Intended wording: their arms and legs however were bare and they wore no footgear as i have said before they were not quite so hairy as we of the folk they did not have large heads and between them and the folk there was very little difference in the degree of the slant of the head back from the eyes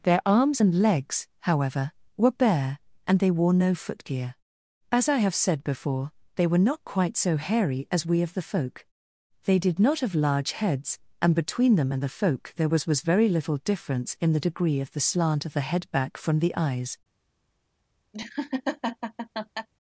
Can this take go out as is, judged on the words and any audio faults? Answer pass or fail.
fail